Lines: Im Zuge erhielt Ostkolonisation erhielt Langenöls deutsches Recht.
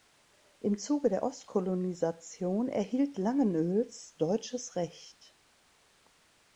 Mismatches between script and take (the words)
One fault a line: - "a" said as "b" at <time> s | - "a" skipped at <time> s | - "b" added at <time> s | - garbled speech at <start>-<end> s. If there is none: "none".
- "erhielt" said as "der" at 1.1 s